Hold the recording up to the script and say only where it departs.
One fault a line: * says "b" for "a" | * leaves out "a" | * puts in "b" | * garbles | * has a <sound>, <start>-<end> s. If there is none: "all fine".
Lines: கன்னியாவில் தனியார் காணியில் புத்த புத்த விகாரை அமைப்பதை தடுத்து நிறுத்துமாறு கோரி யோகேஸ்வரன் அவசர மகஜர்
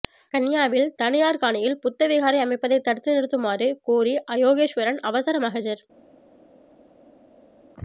* leaves out "புத்த"